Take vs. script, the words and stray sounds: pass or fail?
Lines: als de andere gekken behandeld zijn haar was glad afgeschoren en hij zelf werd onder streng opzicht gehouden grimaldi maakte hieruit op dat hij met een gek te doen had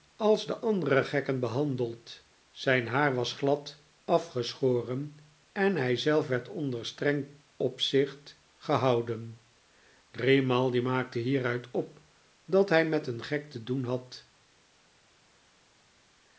pass